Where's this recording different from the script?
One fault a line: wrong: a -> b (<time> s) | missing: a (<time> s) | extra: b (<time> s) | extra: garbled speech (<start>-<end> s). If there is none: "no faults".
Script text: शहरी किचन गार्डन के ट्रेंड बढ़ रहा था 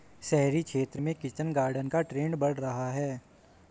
extra: क्षेत्र में (0.6 s)
wrong: के -> का (1.9 s)
wrong: था -> है (2.9 s)